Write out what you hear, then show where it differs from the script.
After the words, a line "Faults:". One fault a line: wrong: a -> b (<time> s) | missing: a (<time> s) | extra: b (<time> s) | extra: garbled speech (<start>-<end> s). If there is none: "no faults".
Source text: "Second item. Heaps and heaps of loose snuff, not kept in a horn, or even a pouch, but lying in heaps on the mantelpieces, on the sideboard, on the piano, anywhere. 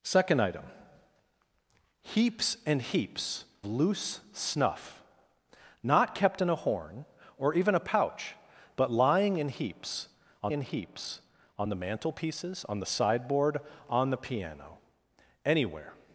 "Second item. Heaps and heaps loose snuff, not kept in a horn, or even a pouch, but lying in heaps on in heaps on the mantelpieces, on the sideboard, on the piano, anywhere.
Faults:
missing: of (3.5 s)
extra: in heaps on (10.5 s)